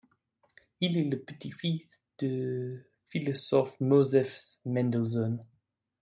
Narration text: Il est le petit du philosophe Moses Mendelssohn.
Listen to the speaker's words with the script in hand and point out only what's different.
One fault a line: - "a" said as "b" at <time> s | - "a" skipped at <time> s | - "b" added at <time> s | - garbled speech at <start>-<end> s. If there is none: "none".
- "fils" added at 1.5 s